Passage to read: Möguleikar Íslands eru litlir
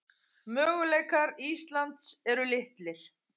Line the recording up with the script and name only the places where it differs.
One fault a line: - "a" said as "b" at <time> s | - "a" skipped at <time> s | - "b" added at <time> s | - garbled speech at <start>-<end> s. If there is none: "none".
none